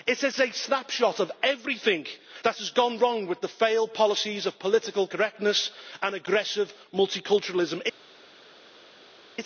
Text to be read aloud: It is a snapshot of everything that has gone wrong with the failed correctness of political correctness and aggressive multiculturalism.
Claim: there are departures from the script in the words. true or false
true